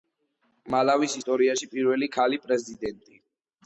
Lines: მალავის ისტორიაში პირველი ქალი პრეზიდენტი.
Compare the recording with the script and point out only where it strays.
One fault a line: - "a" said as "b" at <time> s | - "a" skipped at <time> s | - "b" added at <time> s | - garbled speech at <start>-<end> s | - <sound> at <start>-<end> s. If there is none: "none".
none